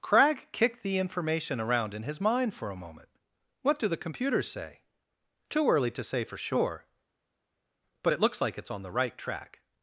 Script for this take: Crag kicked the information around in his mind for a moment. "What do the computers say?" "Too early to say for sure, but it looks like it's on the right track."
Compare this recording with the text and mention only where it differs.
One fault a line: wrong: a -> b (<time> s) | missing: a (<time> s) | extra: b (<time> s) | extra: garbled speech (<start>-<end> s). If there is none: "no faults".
no faults